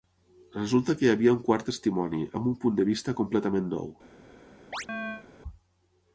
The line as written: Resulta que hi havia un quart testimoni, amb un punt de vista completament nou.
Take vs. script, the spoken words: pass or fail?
pass